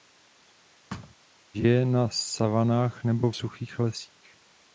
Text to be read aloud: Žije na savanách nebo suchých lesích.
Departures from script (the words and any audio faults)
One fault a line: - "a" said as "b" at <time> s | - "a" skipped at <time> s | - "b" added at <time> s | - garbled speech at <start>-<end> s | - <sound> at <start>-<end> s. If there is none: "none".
- thud at 0.9-1.1 s